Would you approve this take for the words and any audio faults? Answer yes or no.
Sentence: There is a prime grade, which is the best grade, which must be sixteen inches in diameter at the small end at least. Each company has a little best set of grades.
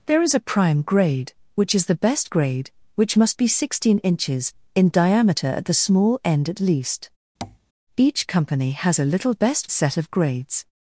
no